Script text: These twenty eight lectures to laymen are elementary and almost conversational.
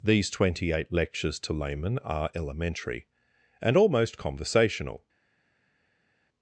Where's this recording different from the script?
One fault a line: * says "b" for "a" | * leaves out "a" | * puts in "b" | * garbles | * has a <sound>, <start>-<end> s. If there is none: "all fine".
all fine